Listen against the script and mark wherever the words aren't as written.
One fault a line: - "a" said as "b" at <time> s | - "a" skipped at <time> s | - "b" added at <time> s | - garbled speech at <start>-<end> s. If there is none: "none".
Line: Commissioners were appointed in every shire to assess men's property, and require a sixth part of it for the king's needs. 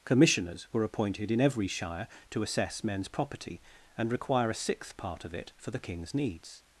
none